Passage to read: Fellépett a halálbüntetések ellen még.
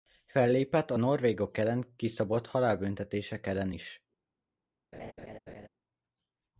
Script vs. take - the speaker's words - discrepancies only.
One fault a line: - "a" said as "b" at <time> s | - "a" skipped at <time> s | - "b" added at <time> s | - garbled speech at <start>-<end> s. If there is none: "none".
- "norvégok ellen kiszabott" added at 1.0 s
- "még" said as "is" at 3.7 s